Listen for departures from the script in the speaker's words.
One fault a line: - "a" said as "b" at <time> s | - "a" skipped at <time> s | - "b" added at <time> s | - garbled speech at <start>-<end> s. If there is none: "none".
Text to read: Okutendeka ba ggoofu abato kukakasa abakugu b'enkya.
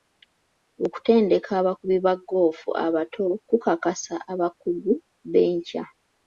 - "abakubi" added at 1.6 s